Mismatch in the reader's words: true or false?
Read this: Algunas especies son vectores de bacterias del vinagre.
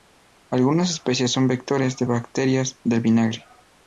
false